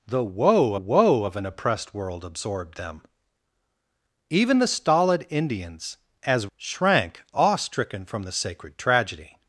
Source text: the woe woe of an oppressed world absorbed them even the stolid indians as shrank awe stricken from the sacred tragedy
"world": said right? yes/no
yes